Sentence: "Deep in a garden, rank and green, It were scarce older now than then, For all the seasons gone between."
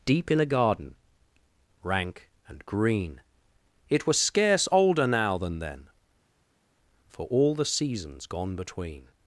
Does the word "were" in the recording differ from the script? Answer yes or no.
yes